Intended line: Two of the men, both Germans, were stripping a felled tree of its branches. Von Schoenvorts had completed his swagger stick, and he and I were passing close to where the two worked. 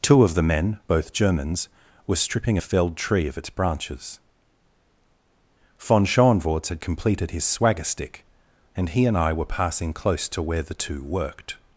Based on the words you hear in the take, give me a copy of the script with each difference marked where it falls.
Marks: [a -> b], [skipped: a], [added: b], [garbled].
Two of the men, both Germans, were stripping a felled tree of its branches. Von Schoenvorts had completed his swagger stick, and he and I were passing close to where the two worked.